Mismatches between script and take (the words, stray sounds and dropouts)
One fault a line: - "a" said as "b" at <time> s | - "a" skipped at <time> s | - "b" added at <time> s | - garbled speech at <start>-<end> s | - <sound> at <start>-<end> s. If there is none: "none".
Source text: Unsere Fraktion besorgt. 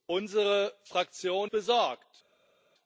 none